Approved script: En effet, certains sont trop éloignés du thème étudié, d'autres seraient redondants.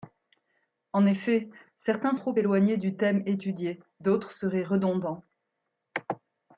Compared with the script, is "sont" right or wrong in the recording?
wrong